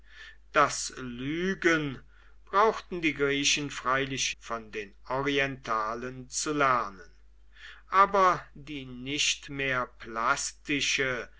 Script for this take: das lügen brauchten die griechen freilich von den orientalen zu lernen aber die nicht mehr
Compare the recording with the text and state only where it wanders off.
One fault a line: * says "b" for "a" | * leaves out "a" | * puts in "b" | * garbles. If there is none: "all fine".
all fine